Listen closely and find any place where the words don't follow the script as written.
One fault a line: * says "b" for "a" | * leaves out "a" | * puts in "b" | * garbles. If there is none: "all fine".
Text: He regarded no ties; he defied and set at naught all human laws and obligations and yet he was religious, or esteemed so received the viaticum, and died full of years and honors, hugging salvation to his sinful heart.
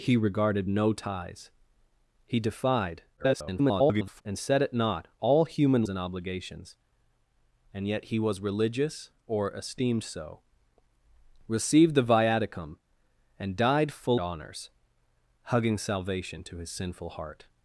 * garbles
* leaves out "laws"
* leaves out "of years and"